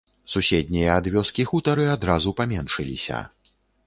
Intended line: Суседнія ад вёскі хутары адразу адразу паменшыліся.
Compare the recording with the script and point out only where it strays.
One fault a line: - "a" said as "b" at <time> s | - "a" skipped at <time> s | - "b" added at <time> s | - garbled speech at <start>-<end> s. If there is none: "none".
- "адразу" skipped at 2.3 s